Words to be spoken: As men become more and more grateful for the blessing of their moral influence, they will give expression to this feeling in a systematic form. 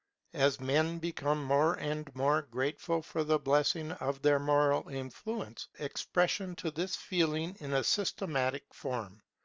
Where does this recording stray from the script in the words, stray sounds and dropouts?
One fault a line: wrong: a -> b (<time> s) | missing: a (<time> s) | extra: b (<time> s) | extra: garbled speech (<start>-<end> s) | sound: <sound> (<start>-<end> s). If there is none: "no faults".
missing: they will give (5.7 s)